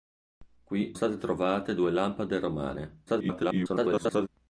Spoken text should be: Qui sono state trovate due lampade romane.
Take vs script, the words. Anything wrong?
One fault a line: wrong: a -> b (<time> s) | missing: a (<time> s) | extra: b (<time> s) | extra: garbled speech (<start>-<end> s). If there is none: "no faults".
missing: sono (0.9 s)
extra: garbled speech (3.1-4.3 s)